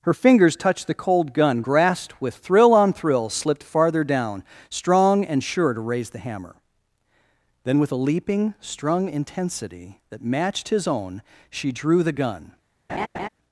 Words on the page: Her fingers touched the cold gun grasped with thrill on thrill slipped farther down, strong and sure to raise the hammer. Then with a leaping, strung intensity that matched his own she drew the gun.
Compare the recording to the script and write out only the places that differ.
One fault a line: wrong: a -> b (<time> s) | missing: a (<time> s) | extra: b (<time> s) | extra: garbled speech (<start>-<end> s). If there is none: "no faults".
no faults